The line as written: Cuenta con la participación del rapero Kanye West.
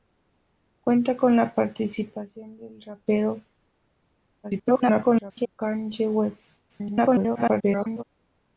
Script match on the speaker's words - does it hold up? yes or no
no